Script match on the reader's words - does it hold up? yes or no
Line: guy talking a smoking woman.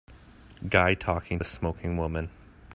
yes